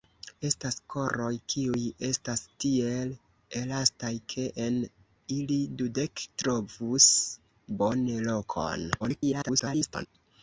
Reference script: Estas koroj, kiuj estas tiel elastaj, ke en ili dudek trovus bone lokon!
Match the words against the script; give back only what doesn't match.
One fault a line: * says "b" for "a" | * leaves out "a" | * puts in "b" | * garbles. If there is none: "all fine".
* garbles